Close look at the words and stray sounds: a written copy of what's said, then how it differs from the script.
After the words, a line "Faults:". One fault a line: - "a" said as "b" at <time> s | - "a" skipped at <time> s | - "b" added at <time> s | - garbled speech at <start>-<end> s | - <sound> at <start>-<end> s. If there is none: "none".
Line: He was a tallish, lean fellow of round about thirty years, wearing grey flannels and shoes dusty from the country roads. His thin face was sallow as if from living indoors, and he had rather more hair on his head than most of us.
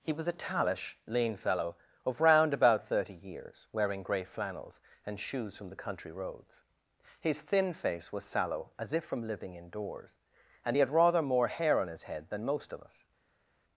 He was a tallish, lean fellow of round about thirty years, wearing grey flannels and shoes from the country roads. His thin face was sallow as if from living indoors, and he had rather more hair on his head than most of us.
Faults:
- "dusty" skipped at 5.5 s